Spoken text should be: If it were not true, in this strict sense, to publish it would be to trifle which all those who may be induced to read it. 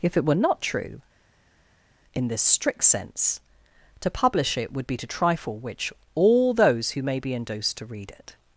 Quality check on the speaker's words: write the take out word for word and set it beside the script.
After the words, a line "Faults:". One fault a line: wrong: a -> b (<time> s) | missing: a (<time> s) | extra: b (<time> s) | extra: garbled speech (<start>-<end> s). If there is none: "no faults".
If it were not true, in this strict sense, to publish it would be to trifle which all those who may be induced to read it.
Faults:
no faults